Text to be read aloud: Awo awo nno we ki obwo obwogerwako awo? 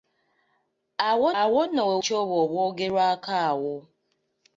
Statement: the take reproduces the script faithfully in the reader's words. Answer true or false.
true